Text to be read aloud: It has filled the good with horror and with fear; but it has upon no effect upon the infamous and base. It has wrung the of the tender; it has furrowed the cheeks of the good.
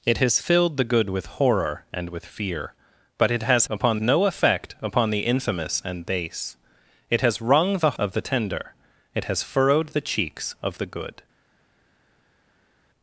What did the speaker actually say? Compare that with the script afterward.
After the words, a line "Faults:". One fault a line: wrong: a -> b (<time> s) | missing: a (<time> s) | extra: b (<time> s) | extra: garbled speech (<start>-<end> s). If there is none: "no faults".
It has filled the good with horror and with fear; but it has upon no effect upon the infamous and base. It has wrung the of the tender; it has furrowed the cheeks of the good.
Faults:
no faults